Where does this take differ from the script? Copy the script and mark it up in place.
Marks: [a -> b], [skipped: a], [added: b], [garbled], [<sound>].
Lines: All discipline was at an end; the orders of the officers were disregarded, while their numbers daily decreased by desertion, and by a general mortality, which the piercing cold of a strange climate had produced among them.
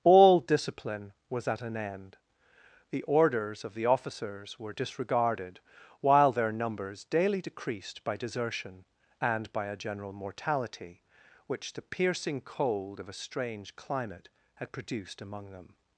All discipline was at an end; the orders of the officers were disregarded, while their numbers daily decreased by desertion, and by a general mortality, which the piercing cold of a strange climate had produced among them.